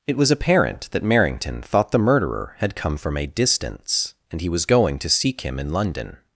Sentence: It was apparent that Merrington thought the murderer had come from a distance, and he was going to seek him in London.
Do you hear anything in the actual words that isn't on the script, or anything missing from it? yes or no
no